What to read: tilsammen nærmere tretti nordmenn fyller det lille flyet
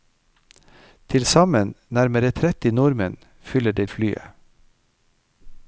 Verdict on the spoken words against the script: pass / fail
fail